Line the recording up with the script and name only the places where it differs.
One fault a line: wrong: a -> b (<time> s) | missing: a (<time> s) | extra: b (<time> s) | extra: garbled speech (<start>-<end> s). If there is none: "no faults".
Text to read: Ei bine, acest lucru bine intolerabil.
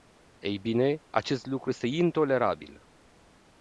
wrong: bine -> este (1.7 s)